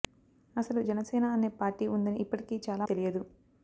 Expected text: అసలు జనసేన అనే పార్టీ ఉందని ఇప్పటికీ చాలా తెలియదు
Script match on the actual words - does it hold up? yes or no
yes